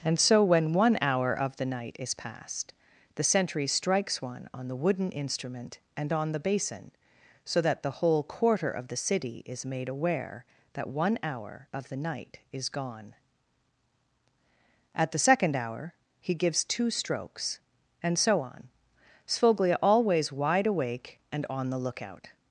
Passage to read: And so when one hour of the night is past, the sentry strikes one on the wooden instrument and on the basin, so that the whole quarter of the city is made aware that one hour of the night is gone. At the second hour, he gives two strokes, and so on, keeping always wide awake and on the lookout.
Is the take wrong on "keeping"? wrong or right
wrong